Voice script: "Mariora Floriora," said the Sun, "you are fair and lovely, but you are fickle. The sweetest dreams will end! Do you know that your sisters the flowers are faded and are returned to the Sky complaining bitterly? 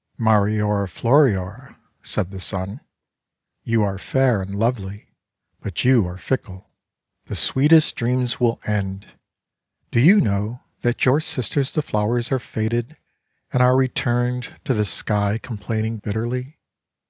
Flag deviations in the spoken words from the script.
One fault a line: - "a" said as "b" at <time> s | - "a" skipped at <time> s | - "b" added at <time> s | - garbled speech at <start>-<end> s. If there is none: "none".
none